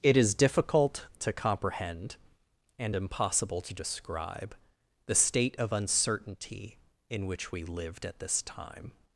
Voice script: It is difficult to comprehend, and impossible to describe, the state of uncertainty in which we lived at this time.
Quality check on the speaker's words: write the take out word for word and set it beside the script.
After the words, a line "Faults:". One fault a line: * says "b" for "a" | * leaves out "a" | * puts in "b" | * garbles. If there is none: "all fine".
It is difficult to comprehend, and impossible to describe, the state of uncertainty in which we lived at this time.
Faults:
all fine